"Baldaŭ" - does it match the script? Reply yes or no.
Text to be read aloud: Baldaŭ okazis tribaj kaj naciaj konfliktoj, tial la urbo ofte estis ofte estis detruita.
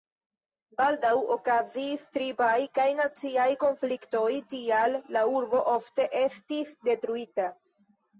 yes